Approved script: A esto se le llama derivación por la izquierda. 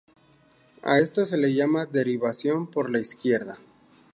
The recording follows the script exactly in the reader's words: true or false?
true